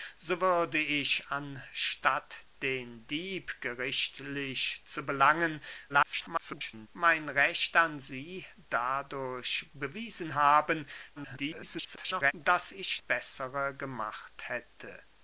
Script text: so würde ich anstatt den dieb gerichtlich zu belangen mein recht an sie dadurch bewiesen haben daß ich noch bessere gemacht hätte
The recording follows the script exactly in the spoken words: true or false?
false